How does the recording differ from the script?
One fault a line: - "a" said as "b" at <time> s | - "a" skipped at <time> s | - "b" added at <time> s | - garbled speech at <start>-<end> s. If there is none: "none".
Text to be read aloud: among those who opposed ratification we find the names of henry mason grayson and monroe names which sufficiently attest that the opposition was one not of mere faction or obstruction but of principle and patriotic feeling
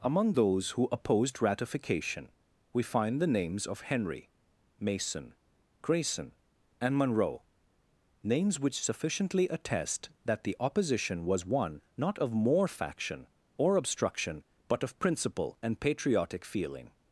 - "mere" said as "more" at 12.3 s